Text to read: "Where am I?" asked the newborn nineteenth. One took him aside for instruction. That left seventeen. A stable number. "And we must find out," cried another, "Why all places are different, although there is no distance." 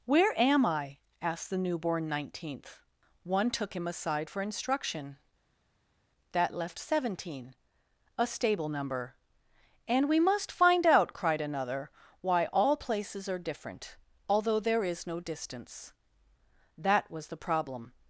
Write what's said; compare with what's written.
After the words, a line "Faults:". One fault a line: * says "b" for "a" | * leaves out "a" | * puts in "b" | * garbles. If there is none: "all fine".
"Where am I?" asked the newborn nineteenth. One took him aside for instruction. That left seventeen. A stable number. "And we must find out," cried another, "Why all places are different, although there is no distance." That was the problem
Faults:
* puts in "That was the problem"